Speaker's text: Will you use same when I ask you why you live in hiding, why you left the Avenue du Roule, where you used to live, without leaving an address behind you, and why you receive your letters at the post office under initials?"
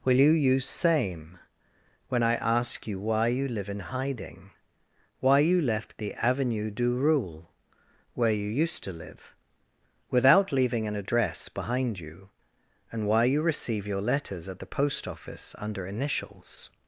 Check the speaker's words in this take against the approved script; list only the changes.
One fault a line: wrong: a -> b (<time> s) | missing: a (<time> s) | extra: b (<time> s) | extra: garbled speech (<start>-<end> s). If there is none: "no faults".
no faults